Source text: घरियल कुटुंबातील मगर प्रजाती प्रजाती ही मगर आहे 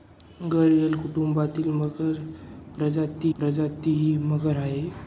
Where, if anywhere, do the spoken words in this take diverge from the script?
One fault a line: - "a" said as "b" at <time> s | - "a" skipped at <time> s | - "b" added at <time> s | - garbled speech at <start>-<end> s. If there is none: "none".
none